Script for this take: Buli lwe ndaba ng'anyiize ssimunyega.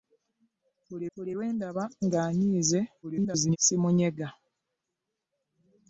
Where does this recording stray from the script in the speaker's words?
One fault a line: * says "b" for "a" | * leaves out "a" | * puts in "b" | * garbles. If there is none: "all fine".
* puts in "buli"
* garbles